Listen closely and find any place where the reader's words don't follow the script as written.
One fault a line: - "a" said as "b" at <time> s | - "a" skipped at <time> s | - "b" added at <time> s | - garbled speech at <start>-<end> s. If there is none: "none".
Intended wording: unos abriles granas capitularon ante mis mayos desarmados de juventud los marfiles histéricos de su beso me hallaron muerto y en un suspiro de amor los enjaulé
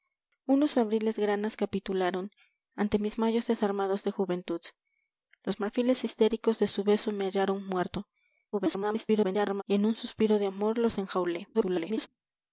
- garbled speech at 8.5-9.6 s
- garbled speech at 11.5-12.1 s